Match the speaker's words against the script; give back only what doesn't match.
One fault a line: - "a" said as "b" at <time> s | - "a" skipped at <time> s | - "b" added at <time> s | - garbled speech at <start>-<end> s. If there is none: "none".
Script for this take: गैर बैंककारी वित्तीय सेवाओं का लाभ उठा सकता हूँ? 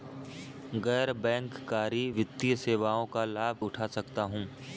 none